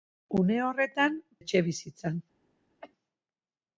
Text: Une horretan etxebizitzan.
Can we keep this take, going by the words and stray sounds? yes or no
no